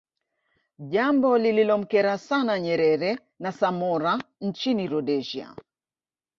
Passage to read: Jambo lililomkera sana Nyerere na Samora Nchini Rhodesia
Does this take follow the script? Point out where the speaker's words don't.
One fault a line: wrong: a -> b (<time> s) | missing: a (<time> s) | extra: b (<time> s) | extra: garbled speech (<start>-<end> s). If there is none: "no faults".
no faults